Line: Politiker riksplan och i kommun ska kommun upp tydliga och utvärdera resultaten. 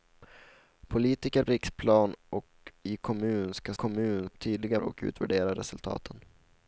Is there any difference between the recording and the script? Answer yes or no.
no